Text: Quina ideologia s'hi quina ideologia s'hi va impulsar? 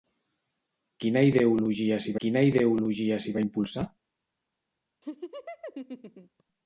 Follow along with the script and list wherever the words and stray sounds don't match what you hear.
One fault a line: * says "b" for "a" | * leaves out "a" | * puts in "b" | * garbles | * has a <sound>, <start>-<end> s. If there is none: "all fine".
* has a laugh, 5.0-6.4 s